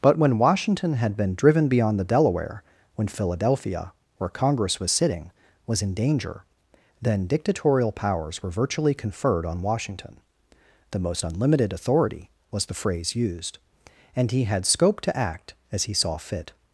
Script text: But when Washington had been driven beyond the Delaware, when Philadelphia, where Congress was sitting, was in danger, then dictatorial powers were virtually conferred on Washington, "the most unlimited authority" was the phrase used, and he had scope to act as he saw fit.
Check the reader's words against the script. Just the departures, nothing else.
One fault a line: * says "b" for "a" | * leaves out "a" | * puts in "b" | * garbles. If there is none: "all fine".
all fine